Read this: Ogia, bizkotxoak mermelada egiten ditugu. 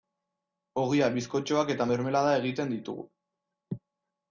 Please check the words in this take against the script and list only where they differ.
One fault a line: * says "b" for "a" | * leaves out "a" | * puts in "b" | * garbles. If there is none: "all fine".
* puts in "eta"